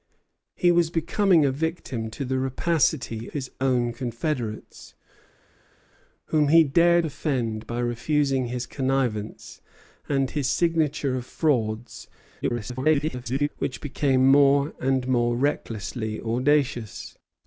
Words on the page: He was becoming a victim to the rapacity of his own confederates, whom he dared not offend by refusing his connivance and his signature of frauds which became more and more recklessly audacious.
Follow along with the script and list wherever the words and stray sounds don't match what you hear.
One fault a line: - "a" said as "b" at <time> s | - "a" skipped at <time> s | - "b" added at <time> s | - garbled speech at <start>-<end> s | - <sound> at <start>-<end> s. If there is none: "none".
- "of" skipped at 3.3 s
- "not" skipped at 7.0 s
- garbled speech at 12.4-13.5 s